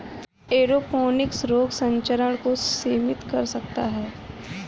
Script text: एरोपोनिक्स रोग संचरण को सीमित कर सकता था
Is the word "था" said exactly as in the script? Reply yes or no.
no